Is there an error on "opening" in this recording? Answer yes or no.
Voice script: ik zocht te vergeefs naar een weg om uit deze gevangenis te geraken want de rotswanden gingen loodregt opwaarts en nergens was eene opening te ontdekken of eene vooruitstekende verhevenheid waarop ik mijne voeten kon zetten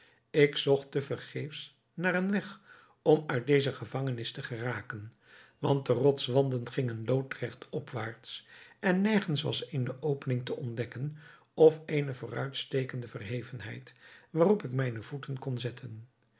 no